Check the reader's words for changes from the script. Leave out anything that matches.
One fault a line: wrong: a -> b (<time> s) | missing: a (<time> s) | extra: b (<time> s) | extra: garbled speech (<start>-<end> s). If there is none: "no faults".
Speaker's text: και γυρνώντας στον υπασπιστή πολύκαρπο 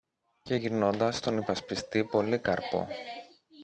no faults